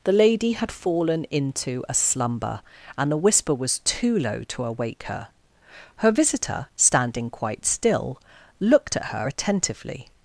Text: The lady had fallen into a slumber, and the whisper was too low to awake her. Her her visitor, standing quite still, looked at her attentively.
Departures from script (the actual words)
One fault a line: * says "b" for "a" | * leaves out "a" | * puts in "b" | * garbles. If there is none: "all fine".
* leaves out "her"